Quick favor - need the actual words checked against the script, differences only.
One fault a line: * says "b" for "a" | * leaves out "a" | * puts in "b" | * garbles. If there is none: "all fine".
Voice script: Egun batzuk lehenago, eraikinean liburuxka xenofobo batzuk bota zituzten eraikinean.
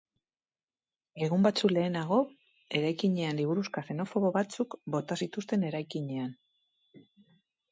all fine